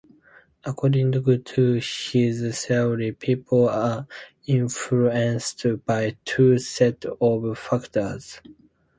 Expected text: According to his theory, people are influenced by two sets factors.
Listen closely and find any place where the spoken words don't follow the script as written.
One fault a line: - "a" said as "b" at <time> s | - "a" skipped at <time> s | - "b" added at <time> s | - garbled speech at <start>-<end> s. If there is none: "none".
- "of" added at 7.2 s